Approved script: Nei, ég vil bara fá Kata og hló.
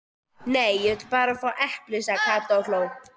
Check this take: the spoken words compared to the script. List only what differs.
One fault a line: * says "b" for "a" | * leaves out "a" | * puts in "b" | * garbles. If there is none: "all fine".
* puts in "epli sagði"